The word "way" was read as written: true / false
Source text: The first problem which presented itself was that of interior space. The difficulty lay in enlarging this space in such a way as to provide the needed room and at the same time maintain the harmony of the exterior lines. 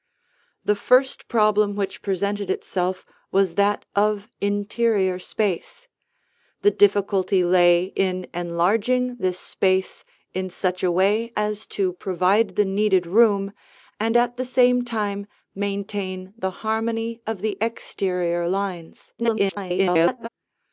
true